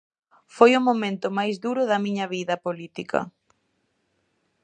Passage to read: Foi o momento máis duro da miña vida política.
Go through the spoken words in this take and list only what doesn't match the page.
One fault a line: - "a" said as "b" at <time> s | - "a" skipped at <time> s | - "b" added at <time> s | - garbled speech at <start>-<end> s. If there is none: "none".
none